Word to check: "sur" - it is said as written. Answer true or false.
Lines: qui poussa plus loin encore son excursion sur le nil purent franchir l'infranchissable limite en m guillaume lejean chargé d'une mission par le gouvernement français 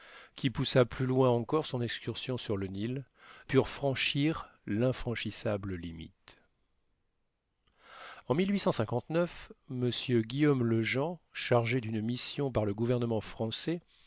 true